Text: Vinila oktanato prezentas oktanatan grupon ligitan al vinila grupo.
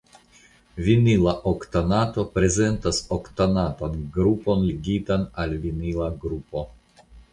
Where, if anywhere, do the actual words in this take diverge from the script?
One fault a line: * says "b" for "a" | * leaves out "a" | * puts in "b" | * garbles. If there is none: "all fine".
all fine